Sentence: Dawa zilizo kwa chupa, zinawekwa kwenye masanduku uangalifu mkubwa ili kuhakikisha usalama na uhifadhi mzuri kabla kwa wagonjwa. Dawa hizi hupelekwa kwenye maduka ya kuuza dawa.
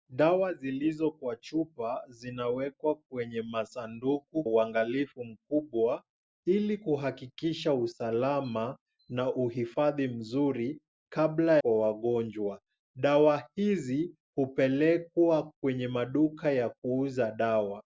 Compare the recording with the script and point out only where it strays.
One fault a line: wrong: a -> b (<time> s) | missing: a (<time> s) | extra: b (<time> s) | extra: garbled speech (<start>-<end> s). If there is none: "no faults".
no faults